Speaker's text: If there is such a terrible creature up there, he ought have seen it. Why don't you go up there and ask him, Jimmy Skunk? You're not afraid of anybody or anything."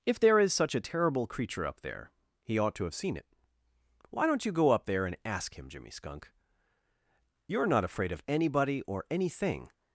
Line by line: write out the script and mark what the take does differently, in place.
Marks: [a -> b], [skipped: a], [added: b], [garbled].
If there is such a terrible creature up there, he ought [added: to] have seen it. Why don't you go up there and ask him, Jimmy Skunk? You're not afraid of anybody or anything."